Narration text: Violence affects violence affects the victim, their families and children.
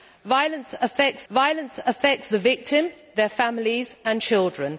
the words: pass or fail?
pass